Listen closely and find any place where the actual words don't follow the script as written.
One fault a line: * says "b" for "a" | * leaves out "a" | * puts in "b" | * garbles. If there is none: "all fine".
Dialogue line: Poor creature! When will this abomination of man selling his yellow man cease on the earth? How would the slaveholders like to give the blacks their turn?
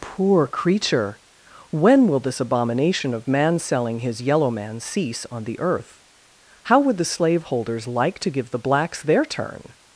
all fine